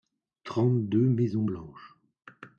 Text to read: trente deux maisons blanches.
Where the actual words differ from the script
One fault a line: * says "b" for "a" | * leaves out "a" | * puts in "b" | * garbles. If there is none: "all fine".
all fine